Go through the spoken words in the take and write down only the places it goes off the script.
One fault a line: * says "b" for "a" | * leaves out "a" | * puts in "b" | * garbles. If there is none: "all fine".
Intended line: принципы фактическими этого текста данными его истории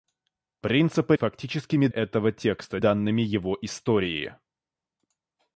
all fine